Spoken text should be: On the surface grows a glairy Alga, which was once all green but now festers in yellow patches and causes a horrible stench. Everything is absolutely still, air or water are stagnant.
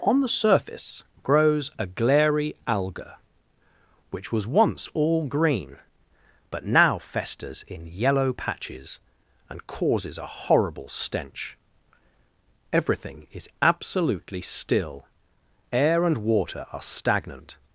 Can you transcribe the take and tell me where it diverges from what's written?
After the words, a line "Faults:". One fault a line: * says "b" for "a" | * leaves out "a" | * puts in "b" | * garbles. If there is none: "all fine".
On the surface grows a glairy Alga, which was once all green but now festers in yellow patches and causes a horrible stench. Everything is absolutely still, air and water are stagnant.
Faults:
* says "and" for "or"